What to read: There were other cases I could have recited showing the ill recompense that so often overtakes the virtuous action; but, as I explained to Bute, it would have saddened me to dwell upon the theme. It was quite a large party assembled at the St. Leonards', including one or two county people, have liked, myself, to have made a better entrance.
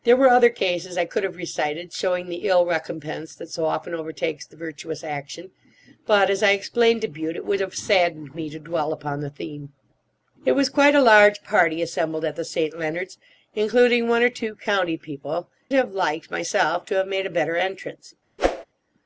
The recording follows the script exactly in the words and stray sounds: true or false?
false